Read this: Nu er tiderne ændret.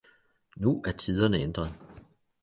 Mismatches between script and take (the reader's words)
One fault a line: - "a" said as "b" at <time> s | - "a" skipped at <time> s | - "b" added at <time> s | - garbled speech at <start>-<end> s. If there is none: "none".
none